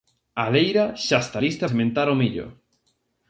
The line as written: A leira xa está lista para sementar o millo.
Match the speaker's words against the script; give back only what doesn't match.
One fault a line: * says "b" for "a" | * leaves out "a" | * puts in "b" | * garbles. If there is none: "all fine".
* leaves out "para"